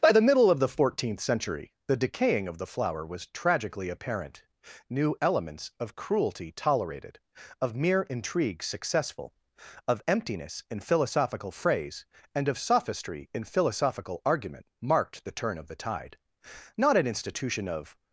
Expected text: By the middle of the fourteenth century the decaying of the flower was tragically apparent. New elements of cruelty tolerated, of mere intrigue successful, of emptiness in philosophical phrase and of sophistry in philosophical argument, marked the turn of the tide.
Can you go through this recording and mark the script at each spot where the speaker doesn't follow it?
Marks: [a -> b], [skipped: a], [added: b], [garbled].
By the middle of the fourteenth century the decaying of the flower was tragically apparent. New elements of cruelty tolerated, of mere intrigue successful, of emptiness in philosophical phrase and of sophistry in philosophical argument, marked the turn of the tide. [added: Not an institution of]